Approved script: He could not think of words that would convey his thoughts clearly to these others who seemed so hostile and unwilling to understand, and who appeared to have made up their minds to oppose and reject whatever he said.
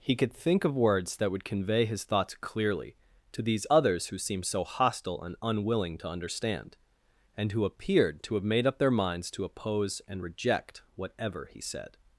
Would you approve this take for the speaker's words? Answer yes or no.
no